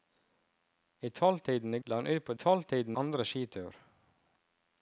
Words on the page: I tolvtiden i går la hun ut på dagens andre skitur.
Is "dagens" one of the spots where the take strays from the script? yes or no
yes